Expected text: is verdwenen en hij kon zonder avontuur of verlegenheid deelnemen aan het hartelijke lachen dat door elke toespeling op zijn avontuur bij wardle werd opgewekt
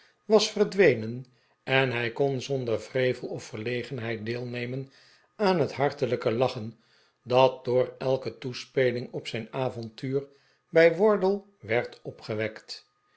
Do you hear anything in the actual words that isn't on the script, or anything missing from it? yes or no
yes